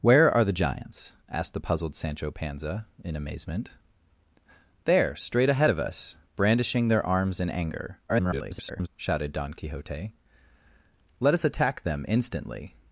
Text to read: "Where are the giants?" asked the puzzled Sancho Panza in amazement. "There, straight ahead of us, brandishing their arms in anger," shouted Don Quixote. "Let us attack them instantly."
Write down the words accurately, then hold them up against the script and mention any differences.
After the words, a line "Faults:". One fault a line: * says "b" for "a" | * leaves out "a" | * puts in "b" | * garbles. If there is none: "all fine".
"Where are the giants?" asked the puzzled Sancho Panza in amazement. "There, straight ahead of us, brandishing their arms in anger," [garbled] shouted Don Quixote. "Let us attack them instantly."
Faults:
* garbles